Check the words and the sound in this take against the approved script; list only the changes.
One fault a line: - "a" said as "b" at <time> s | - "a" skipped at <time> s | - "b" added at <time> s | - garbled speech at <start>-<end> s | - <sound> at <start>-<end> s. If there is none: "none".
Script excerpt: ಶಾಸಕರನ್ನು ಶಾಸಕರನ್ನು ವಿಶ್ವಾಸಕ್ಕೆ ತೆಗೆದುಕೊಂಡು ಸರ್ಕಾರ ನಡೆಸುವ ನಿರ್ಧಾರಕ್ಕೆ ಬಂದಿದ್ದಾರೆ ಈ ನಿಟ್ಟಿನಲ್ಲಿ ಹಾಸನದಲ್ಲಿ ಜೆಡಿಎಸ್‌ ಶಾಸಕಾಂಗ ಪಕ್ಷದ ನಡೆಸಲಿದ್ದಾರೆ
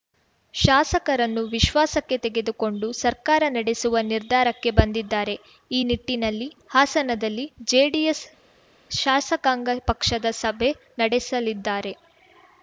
- "ಶಾಸಕರನ್ನು" skipped at 1.4 s
- "ಸಭೆ" added at 10.4 s